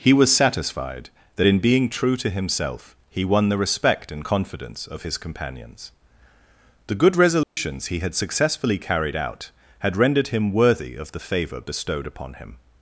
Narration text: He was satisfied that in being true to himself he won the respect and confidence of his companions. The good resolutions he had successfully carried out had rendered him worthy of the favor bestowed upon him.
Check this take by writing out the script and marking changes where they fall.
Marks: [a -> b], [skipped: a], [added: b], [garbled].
He was satisfied that in being true to himself he won the respect and confidence of his companions. The good resolutions he had successfully carried out had rendered him worthy of the favor bestowed upon him.